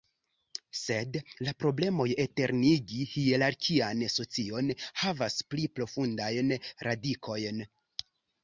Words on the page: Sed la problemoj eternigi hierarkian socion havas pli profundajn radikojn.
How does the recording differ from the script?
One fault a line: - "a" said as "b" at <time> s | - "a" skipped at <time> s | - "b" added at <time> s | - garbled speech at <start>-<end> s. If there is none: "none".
none